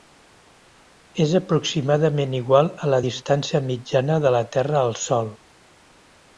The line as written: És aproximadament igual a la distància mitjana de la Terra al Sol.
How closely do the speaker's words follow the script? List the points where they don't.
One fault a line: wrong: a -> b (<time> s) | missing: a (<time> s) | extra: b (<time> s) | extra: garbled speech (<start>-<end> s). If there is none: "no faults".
no faults